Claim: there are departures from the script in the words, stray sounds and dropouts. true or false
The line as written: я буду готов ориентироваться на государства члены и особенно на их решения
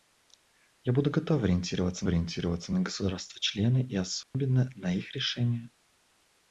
true